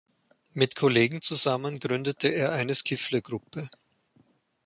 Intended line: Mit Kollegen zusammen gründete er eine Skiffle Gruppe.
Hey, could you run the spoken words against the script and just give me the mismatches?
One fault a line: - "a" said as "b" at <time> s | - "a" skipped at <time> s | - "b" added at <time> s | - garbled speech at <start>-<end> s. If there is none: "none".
none